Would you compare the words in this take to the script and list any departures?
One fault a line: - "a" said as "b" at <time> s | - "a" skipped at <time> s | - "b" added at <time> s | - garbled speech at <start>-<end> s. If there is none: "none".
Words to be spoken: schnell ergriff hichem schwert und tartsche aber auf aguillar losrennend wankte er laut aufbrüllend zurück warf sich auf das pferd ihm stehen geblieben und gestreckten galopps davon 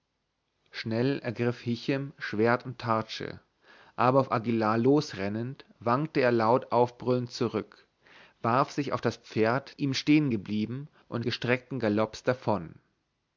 none